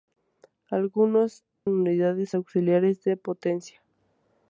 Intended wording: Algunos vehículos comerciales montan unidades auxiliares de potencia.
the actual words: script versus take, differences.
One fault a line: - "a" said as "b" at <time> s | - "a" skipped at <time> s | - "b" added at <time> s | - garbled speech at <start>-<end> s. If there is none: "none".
- "vehículos comerciales montan" skipped at 1.4 s